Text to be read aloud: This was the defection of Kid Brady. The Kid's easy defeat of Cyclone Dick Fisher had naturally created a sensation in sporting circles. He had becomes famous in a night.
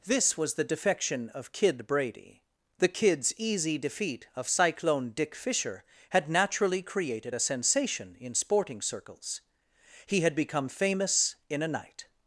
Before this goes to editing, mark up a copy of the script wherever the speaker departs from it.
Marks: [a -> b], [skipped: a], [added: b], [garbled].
This was the defection of Kid Brady. The Kid's easy defeat of Cyclone Dick Fisher had naturally created a sensation in sporting circles. He had [becomes -> become] famous in a night.